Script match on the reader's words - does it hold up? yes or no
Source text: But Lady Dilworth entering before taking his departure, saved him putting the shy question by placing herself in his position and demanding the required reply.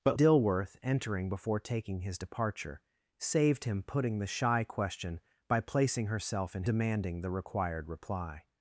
no